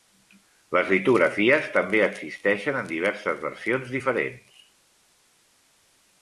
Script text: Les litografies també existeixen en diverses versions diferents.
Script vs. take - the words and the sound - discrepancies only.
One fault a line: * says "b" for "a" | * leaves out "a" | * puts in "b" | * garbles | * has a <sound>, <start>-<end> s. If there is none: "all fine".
all fine